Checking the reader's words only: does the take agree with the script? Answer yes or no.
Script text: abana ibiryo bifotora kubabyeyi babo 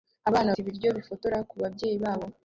yes